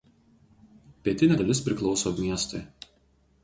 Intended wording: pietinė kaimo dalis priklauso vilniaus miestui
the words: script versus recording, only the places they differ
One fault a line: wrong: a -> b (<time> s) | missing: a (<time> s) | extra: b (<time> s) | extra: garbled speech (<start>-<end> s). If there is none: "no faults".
missing: kaimo (1.4 s)
missing: vilniaus (2.1 s)